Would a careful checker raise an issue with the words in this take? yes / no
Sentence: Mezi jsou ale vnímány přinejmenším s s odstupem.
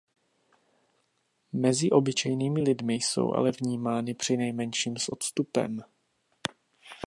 yes